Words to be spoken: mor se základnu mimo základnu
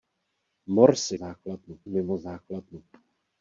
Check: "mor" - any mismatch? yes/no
no